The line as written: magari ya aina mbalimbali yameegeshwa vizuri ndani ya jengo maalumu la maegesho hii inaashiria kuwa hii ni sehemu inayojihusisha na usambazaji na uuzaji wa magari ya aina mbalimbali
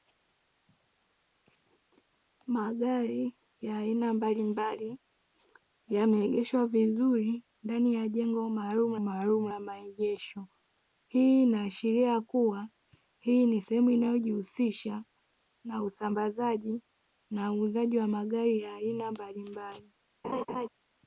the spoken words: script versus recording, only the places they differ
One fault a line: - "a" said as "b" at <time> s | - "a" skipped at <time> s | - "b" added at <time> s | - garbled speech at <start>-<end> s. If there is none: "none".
- "maalumu" added at 9.0 s